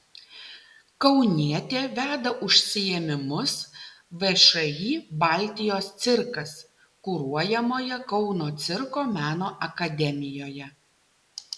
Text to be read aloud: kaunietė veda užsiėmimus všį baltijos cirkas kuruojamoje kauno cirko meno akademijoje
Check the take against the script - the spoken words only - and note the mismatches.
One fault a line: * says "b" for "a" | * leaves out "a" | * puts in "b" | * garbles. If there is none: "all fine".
all fine